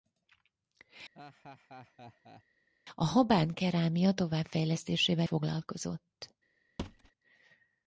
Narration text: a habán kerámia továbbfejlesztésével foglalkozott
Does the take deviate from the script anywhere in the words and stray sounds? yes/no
yes